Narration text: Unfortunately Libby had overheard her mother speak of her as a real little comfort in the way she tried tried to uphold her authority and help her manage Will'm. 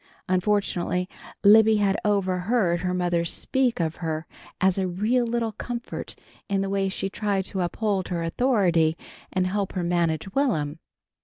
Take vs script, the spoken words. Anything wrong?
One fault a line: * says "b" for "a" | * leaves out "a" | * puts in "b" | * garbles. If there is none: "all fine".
* leaves out "tried"